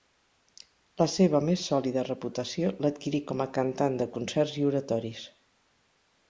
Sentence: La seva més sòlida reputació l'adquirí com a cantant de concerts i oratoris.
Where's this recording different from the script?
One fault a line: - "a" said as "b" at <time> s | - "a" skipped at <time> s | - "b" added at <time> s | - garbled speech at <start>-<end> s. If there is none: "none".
none